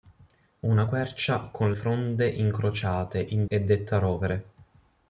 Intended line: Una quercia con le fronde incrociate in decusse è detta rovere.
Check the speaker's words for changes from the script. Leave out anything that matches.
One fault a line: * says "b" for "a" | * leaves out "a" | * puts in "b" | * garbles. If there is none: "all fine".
* leaves out "le"
* leaves out "decusse"